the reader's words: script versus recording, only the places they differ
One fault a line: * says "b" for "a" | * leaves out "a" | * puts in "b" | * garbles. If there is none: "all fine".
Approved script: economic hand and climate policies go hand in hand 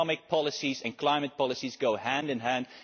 * says "policies" for "hand"